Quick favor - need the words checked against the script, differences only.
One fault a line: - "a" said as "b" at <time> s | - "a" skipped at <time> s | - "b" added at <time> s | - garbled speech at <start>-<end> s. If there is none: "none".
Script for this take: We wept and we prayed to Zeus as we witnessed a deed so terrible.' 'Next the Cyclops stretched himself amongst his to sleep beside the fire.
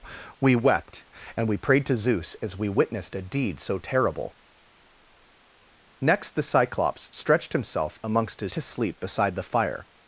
none